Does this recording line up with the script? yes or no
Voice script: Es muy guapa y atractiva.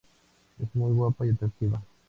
yes